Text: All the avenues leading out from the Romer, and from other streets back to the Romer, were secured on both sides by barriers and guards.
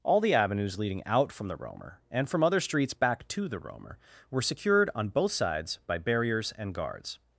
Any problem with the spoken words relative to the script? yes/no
no